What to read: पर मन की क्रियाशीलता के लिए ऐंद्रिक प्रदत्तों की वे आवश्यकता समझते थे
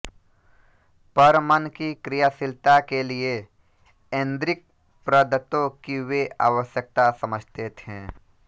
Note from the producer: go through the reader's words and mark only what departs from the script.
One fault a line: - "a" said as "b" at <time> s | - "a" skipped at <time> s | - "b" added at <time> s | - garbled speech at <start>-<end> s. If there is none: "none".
none